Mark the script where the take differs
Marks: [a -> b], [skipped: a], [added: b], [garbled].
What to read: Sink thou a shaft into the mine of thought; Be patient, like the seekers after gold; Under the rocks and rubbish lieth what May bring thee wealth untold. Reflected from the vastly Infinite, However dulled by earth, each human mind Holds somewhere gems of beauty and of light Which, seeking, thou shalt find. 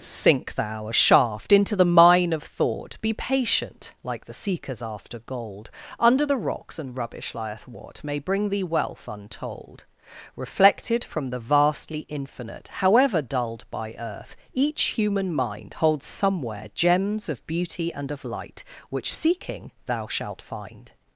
Sink thou a shaft into the mine of thought; Be patient, like the seekers after gold; Under the rocks and rubbish lieth what May bring thee wealth untold. Reflected from the vastly Infinite, However dulled by earth, each human mind Holds somewhere gems of beauty and of light Which, seeking, thou shalt find.